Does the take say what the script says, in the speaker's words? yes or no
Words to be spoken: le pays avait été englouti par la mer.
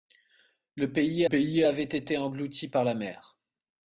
no